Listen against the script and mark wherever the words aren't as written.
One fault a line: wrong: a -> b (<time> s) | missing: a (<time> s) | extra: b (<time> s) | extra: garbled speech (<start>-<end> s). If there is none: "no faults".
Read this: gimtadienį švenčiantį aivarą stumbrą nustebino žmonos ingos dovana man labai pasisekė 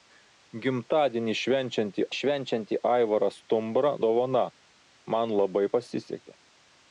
extra: švenčiantį (2.2 s)
missing: nustebino žmonos ingos (3.9 s)